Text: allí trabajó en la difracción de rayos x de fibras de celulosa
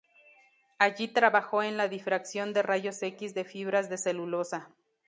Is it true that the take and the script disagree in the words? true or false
false